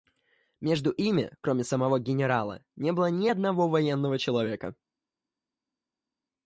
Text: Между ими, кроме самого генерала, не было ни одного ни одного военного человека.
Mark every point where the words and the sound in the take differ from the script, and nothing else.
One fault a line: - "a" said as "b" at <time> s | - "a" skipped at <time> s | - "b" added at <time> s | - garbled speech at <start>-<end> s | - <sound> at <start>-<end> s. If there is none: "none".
- "ни одного" skipped at 3.7 s